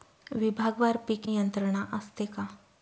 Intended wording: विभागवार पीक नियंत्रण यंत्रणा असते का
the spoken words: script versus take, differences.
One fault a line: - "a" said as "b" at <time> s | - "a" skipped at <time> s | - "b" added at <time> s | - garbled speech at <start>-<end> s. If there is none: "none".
- "नियंत्रण" skipped at 1.3 s